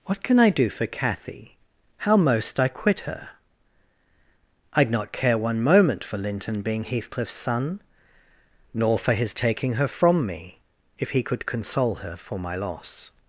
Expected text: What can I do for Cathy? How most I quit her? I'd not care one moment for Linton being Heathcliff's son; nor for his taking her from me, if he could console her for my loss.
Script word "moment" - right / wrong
right